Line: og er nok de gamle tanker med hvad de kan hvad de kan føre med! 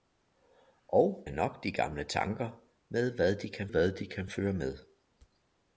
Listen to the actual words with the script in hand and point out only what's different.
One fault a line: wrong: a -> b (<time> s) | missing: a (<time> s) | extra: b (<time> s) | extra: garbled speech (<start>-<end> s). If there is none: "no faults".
no faults